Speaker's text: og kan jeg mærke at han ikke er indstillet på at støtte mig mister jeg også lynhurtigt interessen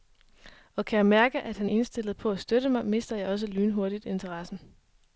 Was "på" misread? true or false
false